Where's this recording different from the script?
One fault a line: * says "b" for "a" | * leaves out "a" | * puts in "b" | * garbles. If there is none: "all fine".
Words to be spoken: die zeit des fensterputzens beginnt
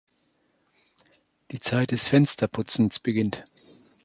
all fine